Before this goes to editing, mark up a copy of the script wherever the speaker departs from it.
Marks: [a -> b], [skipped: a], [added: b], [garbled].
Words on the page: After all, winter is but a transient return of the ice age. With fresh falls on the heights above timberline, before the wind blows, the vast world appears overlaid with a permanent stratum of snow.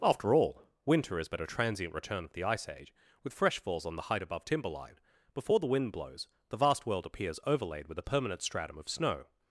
After all, winter is but a transient return of the ice age. With fresh falls on the [heights -> height] above timberline, before the wind blows, the vast world appears overlaid with a permanent stratum of snow.